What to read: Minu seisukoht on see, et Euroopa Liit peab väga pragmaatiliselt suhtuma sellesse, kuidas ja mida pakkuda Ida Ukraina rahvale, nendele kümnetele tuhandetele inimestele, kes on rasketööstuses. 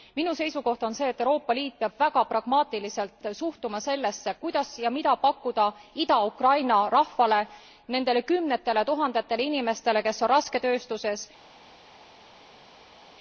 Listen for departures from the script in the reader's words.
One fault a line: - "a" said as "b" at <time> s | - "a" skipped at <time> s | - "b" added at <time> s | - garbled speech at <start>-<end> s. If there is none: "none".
none